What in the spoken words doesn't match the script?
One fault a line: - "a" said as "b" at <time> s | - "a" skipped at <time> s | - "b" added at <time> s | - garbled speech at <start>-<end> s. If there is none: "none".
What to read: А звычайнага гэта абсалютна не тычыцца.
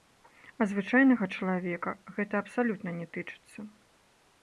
- "чалавека" added at 1.4 s